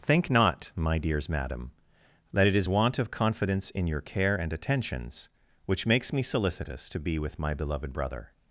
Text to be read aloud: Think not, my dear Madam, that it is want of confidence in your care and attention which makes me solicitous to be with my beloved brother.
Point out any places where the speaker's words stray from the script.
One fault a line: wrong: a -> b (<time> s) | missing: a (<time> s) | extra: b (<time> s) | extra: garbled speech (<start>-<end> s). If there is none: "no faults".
wrong: dear -> dears (1.0 s)
wrong: attention -> attentions (4.5 s)